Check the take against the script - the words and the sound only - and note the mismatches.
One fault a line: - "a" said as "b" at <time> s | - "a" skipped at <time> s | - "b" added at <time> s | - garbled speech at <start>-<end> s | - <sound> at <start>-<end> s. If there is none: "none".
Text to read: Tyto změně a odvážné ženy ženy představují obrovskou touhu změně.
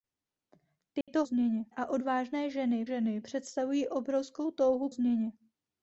- dropout at 1.0-1.1 s